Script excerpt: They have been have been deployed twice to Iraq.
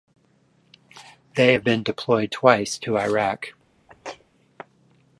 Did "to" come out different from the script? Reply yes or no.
no